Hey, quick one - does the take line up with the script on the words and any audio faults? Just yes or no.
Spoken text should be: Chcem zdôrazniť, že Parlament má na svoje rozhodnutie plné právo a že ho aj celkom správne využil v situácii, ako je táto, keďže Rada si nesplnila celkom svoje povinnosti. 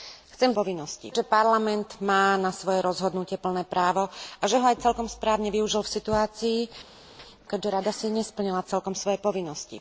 no